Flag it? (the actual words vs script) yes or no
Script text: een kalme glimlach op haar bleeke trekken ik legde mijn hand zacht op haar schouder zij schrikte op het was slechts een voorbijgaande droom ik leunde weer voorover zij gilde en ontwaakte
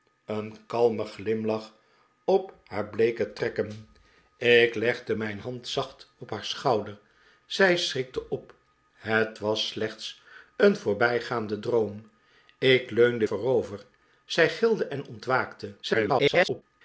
yes